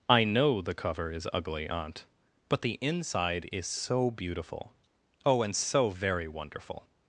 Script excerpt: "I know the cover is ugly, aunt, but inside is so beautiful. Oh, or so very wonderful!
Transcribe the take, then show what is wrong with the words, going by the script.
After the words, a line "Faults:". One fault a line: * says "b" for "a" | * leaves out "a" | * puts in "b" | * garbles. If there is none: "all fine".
"I know the cover is ugly, aunt, but the inside is so beautiful. Oh, and so very wonderful!
Faults:
* puts in "the"
* says "and" for "or"